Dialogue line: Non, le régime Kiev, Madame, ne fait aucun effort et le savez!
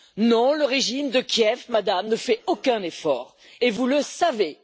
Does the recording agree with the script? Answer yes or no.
no